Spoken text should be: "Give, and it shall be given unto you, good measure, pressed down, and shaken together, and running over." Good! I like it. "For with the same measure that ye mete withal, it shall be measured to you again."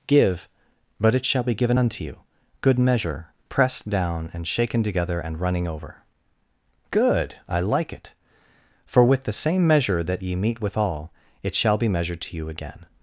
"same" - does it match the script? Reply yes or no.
yes